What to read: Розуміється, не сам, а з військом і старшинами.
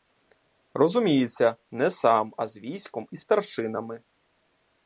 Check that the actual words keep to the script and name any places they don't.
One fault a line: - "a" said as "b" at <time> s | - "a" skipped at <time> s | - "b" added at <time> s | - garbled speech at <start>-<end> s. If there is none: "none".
none